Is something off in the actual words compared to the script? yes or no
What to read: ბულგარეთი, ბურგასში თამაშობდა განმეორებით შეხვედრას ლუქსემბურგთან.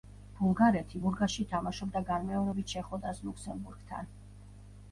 no